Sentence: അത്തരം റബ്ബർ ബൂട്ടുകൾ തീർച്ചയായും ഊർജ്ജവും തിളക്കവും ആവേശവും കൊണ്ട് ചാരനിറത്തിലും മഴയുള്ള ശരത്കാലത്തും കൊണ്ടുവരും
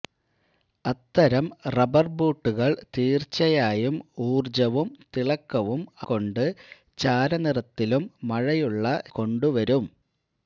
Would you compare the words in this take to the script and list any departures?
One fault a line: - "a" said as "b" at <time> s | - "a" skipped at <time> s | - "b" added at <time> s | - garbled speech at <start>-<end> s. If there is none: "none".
- "ആവേശവും" skipped at 5.8 s
- "ശരത്കാലത്തും" skipped at 8.9 s